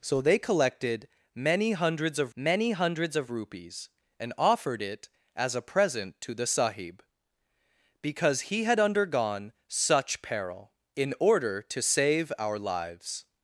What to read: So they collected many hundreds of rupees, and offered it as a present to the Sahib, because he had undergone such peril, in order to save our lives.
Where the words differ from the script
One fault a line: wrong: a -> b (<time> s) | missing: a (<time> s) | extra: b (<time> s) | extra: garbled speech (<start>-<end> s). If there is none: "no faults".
extra: many hundreds of (2.3 s)